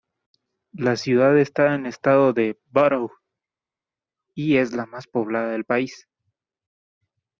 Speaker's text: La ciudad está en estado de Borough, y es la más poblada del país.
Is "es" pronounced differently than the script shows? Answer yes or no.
no